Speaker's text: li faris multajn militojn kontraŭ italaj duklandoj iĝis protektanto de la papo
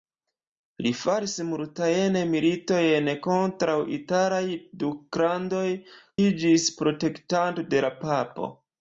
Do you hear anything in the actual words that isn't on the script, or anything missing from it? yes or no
no